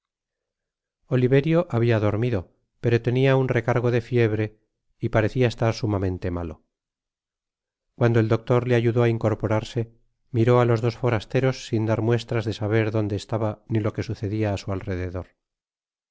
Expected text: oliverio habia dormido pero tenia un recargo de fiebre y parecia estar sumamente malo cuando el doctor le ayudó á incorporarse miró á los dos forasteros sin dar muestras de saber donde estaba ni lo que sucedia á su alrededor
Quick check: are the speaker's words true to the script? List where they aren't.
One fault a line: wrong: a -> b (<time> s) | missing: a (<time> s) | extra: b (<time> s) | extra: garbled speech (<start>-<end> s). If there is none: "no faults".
no faults